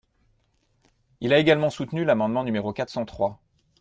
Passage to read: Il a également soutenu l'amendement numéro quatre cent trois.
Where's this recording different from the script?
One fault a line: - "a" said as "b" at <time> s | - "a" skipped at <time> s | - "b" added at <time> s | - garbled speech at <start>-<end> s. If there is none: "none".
none